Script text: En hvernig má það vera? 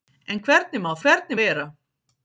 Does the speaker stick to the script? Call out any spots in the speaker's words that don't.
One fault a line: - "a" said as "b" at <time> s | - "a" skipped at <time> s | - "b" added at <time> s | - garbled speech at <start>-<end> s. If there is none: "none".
- "það" said as "hvernig" at 1.0 s